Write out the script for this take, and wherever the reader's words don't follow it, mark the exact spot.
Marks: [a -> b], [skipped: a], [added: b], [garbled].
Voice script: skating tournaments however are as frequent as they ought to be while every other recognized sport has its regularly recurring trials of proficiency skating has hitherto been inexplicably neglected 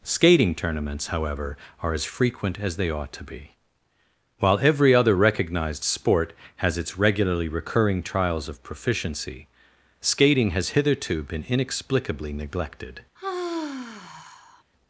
skating tournaments however are as frequent as they ought to be while every other recognized sport has its regularly recurring trials of proficiency skating has hitherto been inexplicably neglected